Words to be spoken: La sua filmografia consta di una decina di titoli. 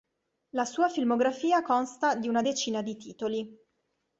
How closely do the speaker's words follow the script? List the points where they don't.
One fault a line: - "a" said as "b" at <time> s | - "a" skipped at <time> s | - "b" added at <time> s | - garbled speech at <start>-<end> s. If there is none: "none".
none